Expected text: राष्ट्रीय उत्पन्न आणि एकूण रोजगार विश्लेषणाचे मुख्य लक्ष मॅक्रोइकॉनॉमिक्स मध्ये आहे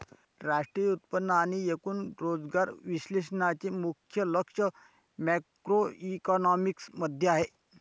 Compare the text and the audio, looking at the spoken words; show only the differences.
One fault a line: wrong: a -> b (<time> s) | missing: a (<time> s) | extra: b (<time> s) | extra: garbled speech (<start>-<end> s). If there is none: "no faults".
no faults